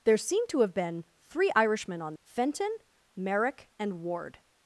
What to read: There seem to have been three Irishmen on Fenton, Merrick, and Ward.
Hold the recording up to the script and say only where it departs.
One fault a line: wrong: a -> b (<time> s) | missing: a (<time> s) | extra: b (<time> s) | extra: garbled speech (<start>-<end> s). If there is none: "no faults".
no faults